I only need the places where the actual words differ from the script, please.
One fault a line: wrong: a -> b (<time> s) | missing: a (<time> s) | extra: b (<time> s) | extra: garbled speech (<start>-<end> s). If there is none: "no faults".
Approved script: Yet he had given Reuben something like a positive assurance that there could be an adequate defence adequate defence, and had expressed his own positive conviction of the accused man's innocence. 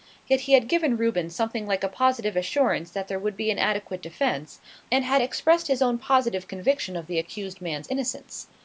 wrong: could -> would (3.2 s)
missing: adequate defence (4.6 s)